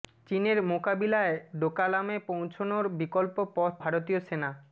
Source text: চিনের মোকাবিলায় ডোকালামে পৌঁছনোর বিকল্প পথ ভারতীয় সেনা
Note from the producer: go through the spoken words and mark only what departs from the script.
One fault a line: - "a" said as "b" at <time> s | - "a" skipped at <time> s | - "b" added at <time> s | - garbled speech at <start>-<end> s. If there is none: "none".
none